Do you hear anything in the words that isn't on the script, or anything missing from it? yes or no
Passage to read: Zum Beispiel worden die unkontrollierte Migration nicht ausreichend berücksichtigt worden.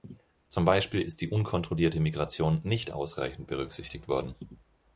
yes